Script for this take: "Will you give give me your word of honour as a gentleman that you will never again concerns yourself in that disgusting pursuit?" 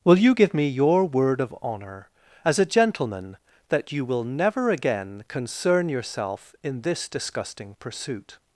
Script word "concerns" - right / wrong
wrong